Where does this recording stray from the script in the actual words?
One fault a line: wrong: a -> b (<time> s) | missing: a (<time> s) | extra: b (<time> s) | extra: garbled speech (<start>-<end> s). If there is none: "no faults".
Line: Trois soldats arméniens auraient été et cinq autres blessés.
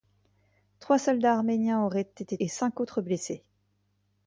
no faults